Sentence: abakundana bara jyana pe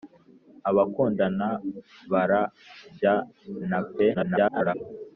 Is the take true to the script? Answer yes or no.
no